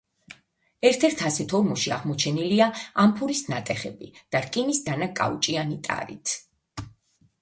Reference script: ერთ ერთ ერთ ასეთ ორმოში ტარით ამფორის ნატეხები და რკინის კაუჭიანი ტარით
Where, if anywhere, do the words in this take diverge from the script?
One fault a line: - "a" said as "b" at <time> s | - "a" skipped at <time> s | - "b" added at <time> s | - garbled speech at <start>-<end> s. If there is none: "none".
- "ერთ" skipped at 1.2 s
- "ტარით" said as "აღმოჩენილია" at 2.0 s
- "დანა" added at 4.9 s